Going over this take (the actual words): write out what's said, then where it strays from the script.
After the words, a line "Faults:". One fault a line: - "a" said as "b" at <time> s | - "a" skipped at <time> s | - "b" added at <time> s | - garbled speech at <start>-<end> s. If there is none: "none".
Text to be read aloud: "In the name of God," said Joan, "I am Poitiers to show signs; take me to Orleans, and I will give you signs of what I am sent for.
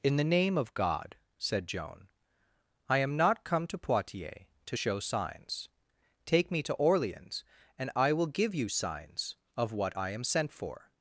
"In the name of God," said Joan, "I am not come to Poitiers to show signs; take me to Orleans, and I will give you signs of what I am sent for.
Faults:
- "not come to" added at 3.2 s